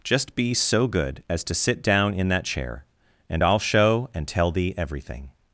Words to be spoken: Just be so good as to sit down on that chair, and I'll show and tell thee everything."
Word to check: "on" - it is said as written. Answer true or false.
false